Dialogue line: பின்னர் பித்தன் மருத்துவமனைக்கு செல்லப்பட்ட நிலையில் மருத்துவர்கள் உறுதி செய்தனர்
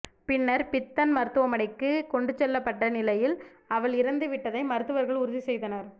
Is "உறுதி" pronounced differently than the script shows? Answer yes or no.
no